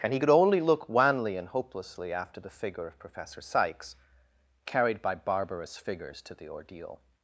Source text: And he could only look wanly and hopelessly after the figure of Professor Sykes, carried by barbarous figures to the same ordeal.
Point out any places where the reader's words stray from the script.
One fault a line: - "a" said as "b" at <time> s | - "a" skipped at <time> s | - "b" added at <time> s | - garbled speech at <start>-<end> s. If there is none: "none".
- "same" skipped at 6.5 s